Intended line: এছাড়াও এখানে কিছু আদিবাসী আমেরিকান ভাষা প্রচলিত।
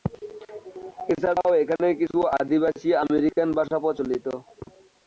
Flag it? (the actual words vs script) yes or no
no